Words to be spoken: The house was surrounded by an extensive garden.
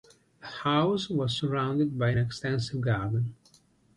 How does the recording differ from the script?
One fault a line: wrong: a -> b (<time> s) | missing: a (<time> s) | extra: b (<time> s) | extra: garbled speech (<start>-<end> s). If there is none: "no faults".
no faults